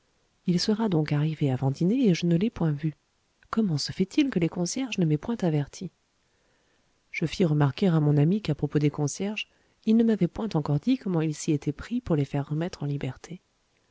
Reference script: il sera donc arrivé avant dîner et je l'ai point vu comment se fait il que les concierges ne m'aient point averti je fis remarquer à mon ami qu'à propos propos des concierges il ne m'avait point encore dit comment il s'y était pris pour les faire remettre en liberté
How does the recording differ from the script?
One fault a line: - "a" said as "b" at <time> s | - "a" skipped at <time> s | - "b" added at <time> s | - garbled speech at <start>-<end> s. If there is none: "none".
- "ne" added at 2.2 s
- "propos" skipped at 8.8 s